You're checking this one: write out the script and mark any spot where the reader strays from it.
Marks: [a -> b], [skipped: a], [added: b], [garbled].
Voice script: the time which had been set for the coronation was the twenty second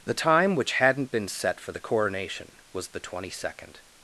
the time which [had -> hadn't] been set for the coronation was the twenty second